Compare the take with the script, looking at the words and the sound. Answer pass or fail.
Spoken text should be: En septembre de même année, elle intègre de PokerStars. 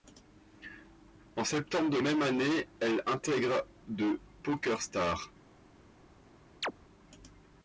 fail